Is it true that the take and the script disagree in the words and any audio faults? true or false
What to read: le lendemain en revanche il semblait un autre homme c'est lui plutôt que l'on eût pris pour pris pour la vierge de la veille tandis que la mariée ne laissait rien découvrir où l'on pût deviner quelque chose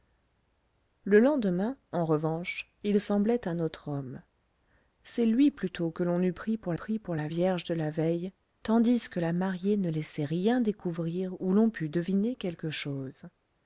false